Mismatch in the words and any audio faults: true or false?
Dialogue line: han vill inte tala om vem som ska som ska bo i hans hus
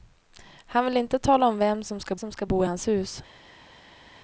false